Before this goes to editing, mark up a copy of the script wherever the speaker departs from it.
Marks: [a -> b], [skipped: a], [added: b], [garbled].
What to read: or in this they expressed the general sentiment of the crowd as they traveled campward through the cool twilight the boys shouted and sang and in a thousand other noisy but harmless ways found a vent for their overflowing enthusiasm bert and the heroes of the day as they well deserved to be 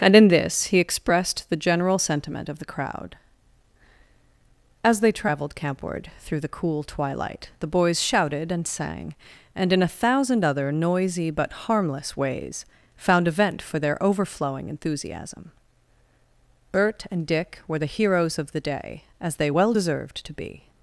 [or -> and] in this [they -> he] expressed the general sentiment of the crowd as they traveled campward through the cool twilight the boys shouted and sang and in a thousand other noisy but harmless ways found a vent for their overflowing enthusiasm bert and [added: dick were] the heroes of the day as they well deserved to be